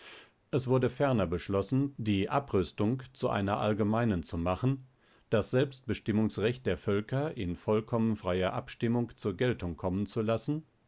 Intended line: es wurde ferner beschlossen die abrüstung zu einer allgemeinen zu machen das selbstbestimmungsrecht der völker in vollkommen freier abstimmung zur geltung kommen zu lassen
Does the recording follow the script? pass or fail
pass